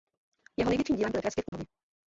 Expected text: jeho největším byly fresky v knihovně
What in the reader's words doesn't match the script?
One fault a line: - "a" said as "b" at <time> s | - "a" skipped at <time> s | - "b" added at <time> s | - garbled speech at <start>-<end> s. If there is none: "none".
- "dílem" added at 0.9 s